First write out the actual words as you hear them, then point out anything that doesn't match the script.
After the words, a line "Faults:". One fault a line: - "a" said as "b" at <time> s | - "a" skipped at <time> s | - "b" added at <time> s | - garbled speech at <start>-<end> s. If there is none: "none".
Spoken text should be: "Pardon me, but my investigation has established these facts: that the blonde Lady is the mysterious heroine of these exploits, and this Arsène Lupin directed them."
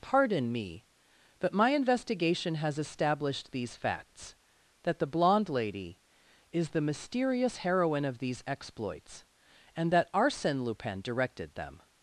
"Pardon me, but my investigation has established these facts: that the blonde Lady is the mysterious heroine of these exploits, and that Arsène Lupin directed them."
Faults:
- "this" said as "that" at 9.9 s